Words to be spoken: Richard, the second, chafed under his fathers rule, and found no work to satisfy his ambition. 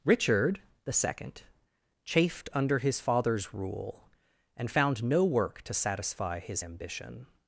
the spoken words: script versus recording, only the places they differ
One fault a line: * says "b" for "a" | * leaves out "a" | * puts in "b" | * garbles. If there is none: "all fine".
all fine